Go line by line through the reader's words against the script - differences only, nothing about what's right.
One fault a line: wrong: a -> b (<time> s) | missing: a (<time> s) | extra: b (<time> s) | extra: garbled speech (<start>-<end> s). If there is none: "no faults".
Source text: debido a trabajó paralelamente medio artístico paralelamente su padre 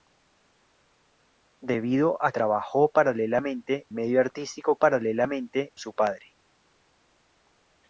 no faults